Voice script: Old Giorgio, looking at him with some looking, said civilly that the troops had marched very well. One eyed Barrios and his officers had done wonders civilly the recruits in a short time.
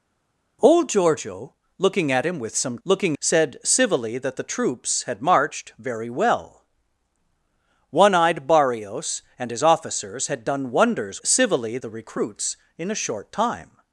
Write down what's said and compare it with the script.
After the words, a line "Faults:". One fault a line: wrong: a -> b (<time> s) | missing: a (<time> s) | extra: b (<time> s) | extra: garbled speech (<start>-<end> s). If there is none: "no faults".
Old Giorgio, looking at him with some looking, said civilly that the troops had marched very well. One eyed Barrios and his officers had done wonders civilly the recruits in a short time.
Faults:
no faults